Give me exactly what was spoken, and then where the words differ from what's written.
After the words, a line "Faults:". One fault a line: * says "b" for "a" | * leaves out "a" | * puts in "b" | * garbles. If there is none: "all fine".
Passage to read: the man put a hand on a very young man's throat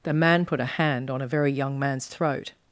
the man put a hand on a very young man's throat
Faults:
all fine